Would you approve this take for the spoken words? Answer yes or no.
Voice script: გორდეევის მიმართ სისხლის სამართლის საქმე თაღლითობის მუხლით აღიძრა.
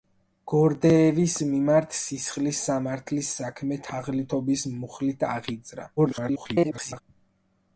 no